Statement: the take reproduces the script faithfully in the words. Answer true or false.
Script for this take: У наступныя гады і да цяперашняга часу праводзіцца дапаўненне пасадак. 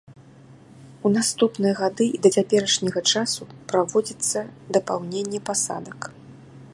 true